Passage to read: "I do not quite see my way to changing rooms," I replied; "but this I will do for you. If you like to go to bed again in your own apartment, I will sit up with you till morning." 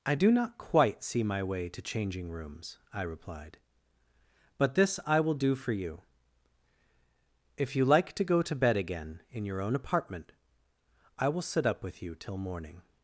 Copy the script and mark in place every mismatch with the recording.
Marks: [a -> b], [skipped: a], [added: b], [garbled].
"I do not quite see my way to changing rooms," I replied; "but this I will do for you. If you like to go to bed again in your own apartment, I will sit up with you till morning."